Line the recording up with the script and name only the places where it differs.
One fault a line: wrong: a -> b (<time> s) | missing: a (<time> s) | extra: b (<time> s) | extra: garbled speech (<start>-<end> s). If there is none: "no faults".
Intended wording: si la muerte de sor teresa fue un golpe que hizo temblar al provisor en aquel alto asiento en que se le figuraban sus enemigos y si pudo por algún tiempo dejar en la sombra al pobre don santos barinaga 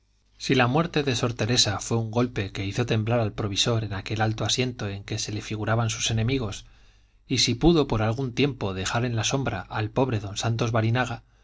no faults